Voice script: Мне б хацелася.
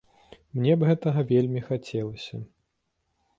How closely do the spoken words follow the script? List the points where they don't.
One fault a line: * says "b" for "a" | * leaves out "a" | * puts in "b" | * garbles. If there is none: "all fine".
* puts in "гэтага вельмі"